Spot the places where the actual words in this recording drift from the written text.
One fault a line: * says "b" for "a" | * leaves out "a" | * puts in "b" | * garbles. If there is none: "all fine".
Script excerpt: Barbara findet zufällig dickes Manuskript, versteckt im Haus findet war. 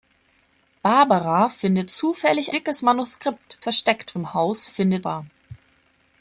all fine